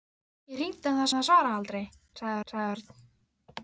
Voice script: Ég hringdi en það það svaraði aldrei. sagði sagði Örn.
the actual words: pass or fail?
pass